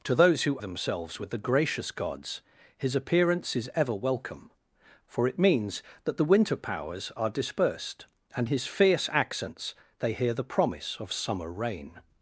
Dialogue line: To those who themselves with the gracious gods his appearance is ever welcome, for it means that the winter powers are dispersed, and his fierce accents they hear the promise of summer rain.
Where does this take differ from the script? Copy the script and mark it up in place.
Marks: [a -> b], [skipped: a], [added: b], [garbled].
To those who themselves with the gracious gods his appearance is ever welcome, for it means that the winter powers are dispersed, and his fierce accents they hear the promise of summer rain.